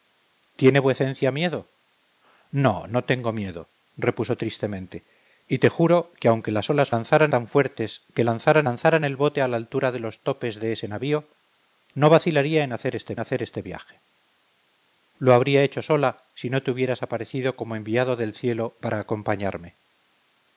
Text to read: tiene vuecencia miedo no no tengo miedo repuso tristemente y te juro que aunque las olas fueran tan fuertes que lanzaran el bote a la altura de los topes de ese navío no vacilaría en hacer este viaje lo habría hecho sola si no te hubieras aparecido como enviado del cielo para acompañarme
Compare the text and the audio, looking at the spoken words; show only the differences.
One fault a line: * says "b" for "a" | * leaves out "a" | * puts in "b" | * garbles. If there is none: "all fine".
* says "lanzaran" for "fueran"
* puts in "lanzaran"
* puts in "hacer este"